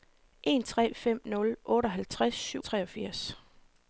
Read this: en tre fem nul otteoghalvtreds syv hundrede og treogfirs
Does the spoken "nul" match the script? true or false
true